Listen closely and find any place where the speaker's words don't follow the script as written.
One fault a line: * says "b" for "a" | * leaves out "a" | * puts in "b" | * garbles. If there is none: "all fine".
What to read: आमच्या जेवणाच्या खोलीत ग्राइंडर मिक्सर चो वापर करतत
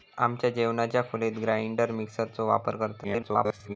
* garbles